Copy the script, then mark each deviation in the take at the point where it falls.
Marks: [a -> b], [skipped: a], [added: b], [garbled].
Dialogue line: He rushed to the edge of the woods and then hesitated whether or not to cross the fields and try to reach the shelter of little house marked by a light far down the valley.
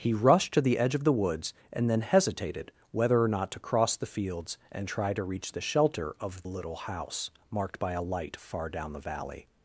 He rushed to the edge of the woods and then hesitated whether or not to cross the fields and try to reach the shelter of little house marked by a light far down the valley.